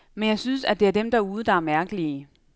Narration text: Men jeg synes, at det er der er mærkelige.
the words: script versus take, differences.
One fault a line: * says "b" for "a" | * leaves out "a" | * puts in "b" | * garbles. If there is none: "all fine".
* puts in "dem derude"